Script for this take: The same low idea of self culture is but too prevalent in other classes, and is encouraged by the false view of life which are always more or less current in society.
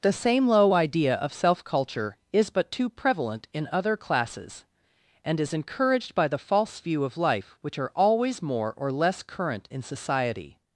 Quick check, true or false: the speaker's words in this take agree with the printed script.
true